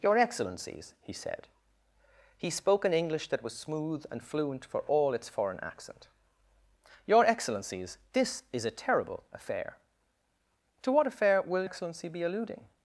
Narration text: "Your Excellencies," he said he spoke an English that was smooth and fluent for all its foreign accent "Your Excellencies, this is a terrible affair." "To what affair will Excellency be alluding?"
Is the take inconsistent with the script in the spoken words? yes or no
no